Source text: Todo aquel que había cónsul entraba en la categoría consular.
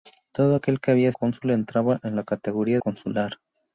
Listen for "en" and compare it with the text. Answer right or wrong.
right